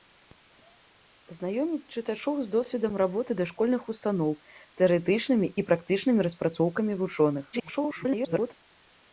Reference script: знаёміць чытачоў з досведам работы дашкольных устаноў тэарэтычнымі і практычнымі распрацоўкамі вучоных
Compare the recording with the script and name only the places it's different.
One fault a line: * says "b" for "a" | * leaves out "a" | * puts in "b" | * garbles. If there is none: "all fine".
* garbles